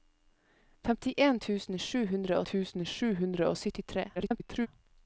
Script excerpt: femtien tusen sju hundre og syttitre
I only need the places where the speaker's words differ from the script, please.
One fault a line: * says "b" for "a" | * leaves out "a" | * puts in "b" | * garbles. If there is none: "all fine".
* puts in "tusen sju hundre"
* garbles